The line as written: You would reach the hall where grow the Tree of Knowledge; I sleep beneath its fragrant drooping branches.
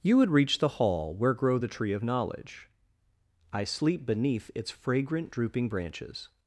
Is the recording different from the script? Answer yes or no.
no